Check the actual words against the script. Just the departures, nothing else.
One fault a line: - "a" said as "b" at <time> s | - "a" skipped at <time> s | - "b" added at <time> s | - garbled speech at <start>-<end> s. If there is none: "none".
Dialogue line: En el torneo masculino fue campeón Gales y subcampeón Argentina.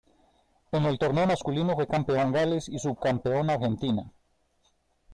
none